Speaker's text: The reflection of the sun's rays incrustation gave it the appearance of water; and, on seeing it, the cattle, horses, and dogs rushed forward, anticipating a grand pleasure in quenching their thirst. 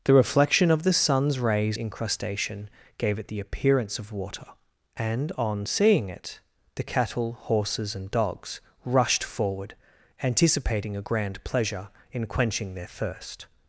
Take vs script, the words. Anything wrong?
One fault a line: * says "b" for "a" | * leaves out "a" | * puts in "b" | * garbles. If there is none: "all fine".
all fine